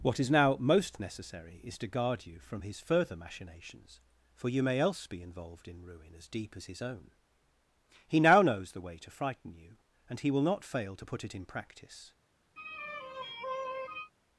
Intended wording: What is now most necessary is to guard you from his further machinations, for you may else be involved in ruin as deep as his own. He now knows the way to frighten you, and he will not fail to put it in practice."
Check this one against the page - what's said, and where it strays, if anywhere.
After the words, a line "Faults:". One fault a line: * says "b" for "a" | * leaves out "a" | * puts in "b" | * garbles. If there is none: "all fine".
What is now most necessary is to guard you from his further machinations, for you may else be involved in ruin as deep as his own. He now knows the way to frighten you, and he will not fail to put it in practice."
Faults:
all fine